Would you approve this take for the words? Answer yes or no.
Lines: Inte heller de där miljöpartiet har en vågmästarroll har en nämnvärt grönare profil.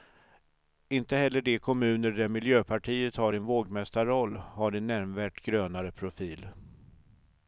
no